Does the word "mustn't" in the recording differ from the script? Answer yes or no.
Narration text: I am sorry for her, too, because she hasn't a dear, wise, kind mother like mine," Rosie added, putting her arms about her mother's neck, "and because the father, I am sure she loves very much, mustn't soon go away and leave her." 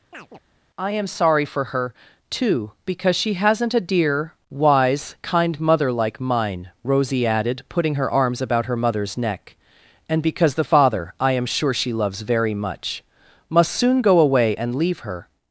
yes